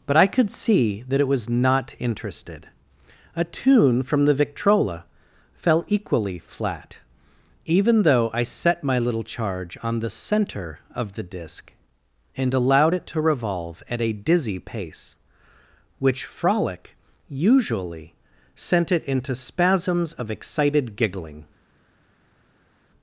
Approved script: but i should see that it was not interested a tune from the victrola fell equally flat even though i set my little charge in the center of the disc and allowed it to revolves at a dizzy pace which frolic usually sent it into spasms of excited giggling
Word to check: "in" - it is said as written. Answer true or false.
false